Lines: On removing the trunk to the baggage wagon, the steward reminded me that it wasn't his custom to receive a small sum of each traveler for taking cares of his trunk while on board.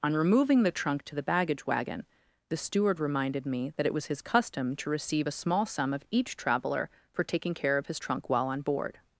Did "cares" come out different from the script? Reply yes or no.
yes